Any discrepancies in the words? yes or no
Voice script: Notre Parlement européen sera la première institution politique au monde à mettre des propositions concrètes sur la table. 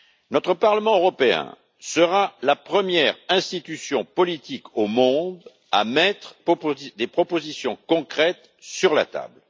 yes